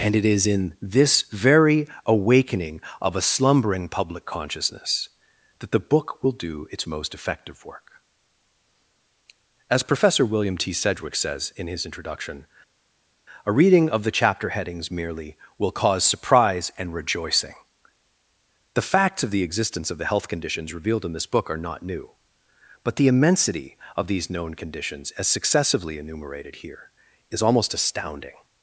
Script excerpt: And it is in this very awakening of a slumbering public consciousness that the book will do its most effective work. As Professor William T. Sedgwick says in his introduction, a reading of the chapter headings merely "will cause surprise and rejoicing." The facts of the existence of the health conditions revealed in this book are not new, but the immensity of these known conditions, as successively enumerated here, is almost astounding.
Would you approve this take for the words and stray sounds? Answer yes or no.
yes